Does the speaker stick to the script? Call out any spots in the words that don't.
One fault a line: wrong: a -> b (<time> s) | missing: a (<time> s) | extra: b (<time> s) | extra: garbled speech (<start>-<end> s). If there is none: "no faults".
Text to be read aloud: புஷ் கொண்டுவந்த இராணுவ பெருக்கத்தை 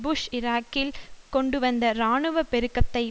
extra: ஈராக்கில் (0.3 s)